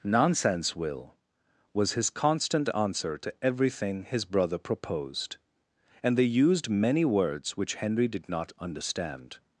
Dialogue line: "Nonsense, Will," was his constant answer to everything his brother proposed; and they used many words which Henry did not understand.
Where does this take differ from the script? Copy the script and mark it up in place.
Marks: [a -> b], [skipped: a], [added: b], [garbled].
"Nonsense, Will," was his constant answer to everything his brother proposed; and they used many words which Henry did not understand.